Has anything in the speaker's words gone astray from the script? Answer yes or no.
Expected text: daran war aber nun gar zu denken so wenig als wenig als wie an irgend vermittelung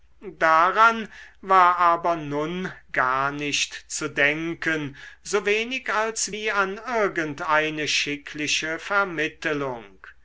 yes